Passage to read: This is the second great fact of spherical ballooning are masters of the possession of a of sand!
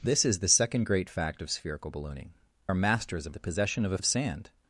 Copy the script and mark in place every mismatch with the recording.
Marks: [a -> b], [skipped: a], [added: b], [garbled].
This is the second great fact of spherical ballooning are masters of the possession of a of sand!